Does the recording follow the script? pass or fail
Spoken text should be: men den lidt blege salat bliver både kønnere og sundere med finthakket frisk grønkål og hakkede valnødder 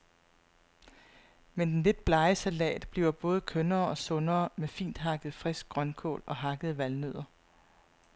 pass